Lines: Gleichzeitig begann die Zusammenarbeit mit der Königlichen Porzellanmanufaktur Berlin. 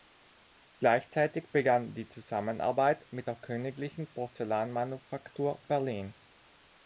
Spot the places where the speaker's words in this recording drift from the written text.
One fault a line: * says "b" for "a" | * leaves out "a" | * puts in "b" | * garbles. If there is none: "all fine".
all fine